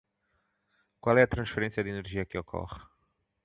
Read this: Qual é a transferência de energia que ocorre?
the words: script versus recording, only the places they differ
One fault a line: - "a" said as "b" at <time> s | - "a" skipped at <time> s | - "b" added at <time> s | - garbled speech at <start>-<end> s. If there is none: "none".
none